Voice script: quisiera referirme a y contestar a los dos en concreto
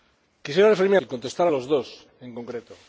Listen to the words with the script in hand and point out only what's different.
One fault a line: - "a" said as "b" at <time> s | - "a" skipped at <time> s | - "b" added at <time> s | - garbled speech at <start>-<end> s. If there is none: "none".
none